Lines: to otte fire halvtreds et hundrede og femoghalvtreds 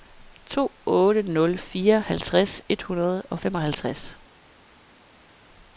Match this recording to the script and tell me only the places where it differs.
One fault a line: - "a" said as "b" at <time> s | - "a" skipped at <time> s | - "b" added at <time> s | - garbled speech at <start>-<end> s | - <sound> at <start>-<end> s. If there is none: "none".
- "nul" added at 1.2 s